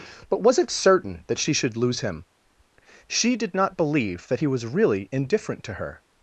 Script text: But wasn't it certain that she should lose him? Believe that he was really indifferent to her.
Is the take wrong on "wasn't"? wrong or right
wrong